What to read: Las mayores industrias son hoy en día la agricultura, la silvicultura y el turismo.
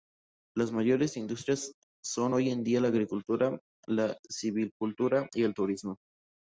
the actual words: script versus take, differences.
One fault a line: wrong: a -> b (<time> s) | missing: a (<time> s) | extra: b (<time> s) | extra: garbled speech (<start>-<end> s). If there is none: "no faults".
no faults